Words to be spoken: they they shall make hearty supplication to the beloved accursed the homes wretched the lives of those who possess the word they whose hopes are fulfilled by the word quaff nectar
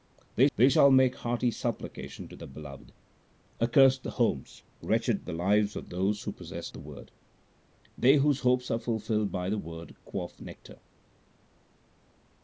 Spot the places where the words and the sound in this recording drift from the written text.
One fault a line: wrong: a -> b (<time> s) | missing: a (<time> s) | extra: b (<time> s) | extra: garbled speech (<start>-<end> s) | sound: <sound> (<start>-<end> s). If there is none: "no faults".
no faults